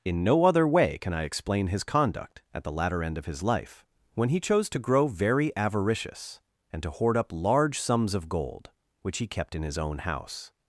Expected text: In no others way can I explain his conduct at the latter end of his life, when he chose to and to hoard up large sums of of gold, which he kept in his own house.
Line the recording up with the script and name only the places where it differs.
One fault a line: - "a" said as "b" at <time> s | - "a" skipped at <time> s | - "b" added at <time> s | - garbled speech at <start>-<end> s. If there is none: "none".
- "others" said as "other" at 0.5 s
- "grow very avaricious" added at 4.8 s
- "of" skipped at 8.3 s